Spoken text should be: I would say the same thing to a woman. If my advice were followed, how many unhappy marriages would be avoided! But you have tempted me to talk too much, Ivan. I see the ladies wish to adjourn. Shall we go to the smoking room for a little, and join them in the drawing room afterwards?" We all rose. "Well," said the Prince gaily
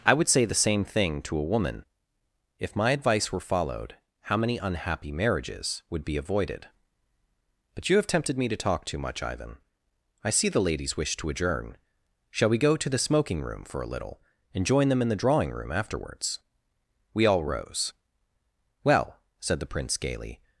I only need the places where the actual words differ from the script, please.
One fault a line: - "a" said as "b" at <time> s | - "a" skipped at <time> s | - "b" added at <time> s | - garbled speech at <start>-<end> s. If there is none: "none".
none